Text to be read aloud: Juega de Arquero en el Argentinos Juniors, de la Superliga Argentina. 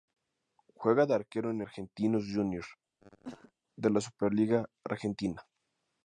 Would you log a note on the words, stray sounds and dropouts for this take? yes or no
yes